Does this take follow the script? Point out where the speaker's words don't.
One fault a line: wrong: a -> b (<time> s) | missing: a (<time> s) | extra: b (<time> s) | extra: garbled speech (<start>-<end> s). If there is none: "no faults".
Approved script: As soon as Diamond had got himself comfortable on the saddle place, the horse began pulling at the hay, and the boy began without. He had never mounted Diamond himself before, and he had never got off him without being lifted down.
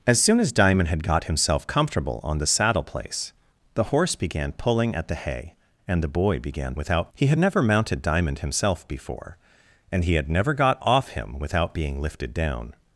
no faults